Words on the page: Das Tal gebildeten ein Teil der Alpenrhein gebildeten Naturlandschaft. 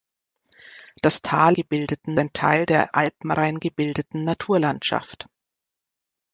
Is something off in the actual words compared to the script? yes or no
no